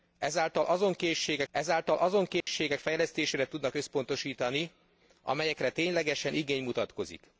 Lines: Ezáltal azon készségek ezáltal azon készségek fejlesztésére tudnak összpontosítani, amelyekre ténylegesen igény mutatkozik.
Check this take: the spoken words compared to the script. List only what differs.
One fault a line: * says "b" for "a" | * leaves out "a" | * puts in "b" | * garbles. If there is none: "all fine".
all fine